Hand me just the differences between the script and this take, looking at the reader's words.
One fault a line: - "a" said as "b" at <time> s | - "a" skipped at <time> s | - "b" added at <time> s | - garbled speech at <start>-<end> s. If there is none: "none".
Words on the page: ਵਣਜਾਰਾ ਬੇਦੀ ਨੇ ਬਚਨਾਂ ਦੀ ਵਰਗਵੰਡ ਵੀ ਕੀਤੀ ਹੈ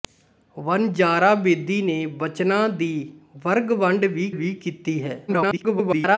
- "ਵੀ" added at 4.3 s
- garbled speech at 5.3-6.2 s